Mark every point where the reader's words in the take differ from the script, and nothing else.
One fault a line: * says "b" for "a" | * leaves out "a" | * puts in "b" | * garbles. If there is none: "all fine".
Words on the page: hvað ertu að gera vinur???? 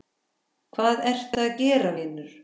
all fine